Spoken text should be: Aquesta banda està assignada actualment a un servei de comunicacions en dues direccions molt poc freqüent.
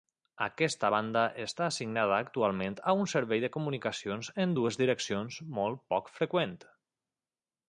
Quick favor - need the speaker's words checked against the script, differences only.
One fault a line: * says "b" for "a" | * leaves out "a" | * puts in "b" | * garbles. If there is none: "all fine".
all fine